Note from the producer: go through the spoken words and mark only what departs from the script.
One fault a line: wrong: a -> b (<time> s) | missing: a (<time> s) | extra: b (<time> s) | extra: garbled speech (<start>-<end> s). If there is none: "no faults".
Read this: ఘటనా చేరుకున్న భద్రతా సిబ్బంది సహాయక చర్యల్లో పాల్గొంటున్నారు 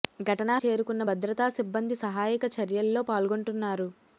no faults